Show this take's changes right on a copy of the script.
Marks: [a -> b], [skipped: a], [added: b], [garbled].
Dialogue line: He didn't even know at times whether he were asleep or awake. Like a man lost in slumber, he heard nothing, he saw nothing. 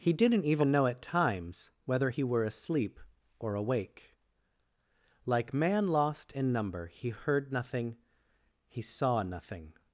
He didn't even know at times whether he were asleep or awake. Like [skipped: a] man lost in [slumber, -> number] he heard nothing, he saw nothing.